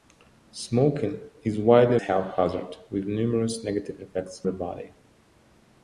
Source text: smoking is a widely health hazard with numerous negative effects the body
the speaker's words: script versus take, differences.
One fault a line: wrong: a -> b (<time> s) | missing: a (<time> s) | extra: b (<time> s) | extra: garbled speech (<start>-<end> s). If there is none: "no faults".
no faults